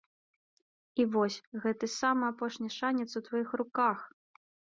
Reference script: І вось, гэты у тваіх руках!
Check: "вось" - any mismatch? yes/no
no